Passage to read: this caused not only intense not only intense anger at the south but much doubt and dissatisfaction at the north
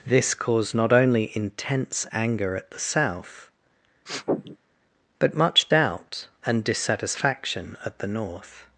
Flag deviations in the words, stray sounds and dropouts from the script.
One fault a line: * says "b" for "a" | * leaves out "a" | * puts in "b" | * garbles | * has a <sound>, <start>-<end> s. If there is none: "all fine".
* leaves out "not only intense"
* has a sniff, 4.1-4.6 s